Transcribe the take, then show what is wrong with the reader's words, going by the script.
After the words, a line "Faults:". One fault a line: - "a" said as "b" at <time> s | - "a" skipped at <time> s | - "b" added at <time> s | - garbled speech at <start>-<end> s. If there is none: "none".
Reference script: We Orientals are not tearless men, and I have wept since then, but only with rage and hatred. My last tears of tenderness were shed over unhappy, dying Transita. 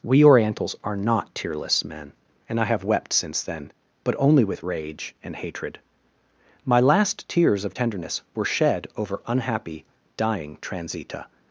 We Orientals are not tearless men, and I have wept since then, but only with rage and hatred. My last tears of tenderness were shed over unhappy, dying Transita.
Faults:
none